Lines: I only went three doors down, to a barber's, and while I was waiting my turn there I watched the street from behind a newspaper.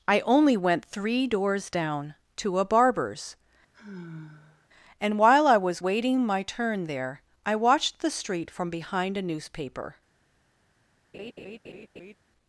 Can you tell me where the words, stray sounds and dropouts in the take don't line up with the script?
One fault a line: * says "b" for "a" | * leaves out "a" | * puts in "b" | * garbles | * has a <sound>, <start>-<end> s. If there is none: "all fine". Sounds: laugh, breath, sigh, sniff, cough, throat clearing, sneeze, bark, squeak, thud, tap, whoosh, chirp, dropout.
* has a sigh, 3.7-4.7 s
* has a laugh, 11.1-12.2 s